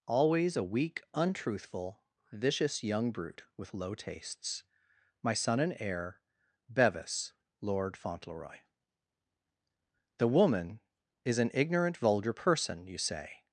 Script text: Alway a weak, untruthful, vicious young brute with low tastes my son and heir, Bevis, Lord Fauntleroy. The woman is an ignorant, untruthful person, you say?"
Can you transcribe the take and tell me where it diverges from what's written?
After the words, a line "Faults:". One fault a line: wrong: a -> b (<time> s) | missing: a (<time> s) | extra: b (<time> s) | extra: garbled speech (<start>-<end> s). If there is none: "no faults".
Always a weak, untruthful, vicious young brute with low tastes my son and heir, Bevis, Lord Fauntleroy. The woman is an ignorant, vulgar person, you say?"
Faults:
wrong: Alway -> Always (0.1 s)
wrong: untruthful -> vulgar (11.9 s)